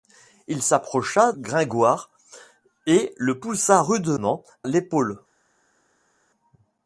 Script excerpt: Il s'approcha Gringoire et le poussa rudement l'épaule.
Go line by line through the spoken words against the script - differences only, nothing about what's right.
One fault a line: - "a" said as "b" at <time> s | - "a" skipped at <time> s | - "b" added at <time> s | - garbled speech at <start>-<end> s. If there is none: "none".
none